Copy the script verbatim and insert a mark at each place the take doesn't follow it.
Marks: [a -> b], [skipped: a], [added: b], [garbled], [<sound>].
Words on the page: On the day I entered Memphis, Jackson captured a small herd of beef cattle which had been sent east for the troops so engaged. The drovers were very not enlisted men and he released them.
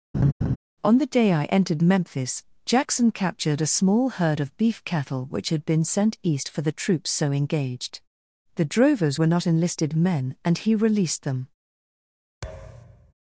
[laugh] On the day I entered Memphis, Jackson captured a small herd of beef cattle which had been sent east for the troops so engaged. The drovers were [skipped: very] not enlisted men and he released them. [thud]